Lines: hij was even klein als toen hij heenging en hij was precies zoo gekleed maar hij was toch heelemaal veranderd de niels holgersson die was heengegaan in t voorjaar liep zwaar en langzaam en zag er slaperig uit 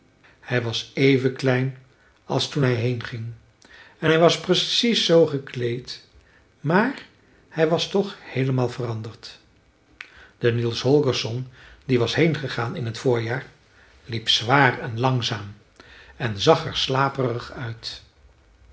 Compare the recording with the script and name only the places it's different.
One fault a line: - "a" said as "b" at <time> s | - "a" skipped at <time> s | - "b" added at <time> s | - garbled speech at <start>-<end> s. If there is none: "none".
none